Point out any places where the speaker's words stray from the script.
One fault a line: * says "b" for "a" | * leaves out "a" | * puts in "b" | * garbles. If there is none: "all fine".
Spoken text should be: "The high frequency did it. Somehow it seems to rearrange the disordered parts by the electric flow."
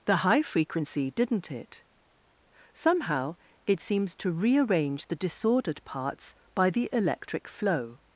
* says "didn't" for "did"